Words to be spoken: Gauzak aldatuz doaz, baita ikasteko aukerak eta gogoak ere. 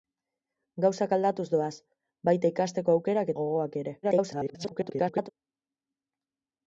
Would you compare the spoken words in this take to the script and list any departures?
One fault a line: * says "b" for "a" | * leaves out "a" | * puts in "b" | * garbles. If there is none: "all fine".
* leaves out "eta"
* garbles